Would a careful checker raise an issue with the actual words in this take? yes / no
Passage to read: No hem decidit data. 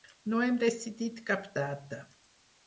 yes